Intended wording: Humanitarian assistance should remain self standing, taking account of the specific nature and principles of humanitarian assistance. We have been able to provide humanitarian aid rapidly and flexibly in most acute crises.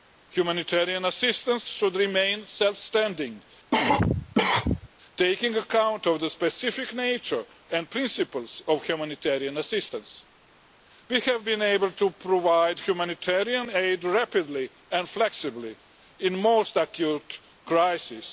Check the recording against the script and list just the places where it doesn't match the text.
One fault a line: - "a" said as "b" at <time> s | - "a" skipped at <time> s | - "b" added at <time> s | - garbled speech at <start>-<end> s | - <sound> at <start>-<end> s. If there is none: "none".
- cough at 3.7-4.9 s